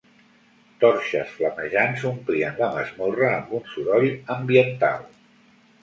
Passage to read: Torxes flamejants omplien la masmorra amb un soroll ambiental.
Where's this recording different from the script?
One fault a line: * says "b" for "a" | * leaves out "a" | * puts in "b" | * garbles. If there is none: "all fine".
all fine